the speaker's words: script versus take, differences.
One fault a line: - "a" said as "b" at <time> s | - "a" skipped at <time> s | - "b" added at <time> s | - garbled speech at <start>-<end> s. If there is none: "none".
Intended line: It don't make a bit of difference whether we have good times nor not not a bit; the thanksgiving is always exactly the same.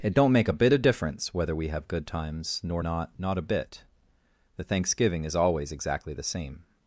none